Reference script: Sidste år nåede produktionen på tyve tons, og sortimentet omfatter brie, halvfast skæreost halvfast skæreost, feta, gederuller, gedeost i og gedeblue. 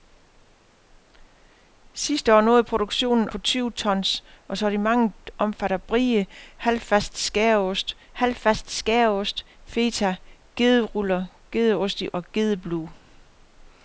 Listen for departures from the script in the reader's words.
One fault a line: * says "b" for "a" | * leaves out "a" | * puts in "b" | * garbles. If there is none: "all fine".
all fine